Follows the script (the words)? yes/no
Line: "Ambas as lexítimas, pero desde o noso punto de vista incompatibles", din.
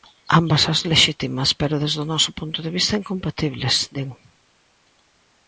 yes